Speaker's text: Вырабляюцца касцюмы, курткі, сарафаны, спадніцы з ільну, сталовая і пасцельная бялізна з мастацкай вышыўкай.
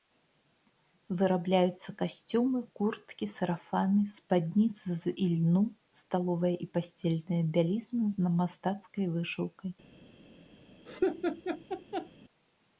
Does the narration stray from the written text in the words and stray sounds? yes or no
yes